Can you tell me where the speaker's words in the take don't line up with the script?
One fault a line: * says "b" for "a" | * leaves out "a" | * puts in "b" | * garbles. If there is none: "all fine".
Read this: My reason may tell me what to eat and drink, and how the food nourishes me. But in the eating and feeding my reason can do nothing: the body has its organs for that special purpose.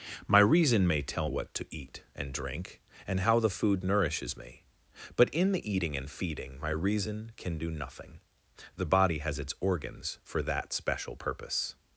* leaves out "me"